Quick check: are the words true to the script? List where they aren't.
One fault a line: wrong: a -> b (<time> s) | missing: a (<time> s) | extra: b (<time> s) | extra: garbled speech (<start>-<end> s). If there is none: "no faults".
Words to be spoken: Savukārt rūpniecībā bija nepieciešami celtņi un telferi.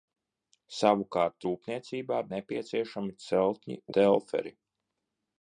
missing: bija (2.2 s)
missing: un (3.8 s)